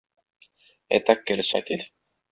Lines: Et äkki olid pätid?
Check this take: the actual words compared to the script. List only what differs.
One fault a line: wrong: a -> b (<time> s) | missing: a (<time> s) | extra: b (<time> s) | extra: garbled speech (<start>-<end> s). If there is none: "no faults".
no faults